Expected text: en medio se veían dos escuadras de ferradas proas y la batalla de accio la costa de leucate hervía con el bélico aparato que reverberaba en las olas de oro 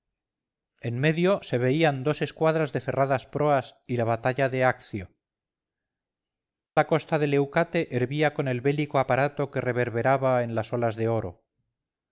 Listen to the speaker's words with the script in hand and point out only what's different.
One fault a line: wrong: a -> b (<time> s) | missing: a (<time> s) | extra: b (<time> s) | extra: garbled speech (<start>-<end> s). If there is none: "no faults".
no faults